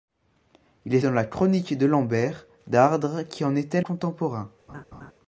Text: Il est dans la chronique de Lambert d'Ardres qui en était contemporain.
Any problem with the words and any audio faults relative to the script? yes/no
yes